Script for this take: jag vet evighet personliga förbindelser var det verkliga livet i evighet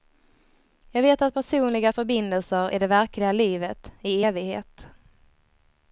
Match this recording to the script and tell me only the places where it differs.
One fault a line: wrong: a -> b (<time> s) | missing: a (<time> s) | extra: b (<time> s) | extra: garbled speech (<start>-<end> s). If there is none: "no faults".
wrong: evighet -> att (1.2 s)
wrong: var -> är (2.7 s)